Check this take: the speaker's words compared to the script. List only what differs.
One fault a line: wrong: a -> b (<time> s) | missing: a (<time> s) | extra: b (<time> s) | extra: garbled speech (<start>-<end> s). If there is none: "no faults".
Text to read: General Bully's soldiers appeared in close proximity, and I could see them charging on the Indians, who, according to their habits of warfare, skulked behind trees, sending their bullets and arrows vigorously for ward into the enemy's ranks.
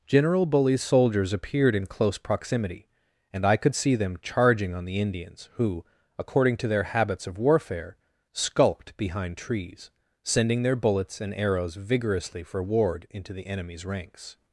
no faults